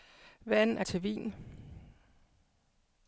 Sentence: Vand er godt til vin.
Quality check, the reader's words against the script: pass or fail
fail